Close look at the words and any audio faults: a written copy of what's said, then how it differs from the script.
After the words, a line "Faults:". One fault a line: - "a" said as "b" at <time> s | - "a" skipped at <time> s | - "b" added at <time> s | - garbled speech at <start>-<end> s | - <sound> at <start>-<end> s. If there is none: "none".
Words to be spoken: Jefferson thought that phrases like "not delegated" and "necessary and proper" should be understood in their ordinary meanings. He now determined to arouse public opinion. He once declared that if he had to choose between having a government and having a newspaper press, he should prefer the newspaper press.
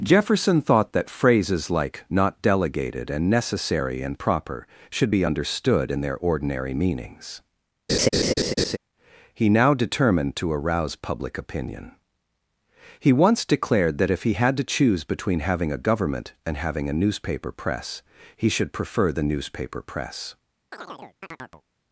Jefferson thought that phrases like "not delegated" and "necessary and proper" should be understood in their ordinary meanings. He now determined to arouse public opinion. He once declared that if he had to choose between having a government and having a newspaper press, he should prefer the newspaper press.
Faults:
- laugh at 7.9-8.8 s
- chirp at 20.7-21.6 s